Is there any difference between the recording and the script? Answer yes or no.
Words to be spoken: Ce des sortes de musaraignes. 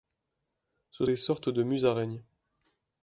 no